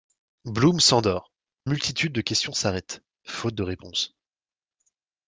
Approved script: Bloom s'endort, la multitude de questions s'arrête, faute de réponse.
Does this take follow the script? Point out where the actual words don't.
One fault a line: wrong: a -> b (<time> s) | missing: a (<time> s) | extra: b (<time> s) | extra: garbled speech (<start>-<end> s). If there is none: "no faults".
missing: la (1.3 s)